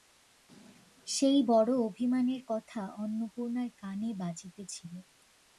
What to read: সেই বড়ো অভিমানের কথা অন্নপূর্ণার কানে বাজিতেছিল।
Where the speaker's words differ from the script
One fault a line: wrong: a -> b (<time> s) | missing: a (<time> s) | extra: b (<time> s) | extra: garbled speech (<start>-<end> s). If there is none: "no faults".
no faults